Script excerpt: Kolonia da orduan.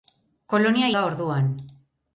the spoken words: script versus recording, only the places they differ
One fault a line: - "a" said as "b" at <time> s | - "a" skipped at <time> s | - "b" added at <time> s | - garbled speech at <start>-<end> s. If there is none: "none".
none